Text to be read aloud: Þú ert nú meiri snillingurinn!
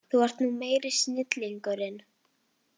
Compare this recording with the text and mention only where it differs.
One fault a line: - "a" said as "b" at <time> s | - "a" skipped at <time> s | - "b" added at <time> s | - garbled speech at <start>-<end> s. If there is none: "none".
none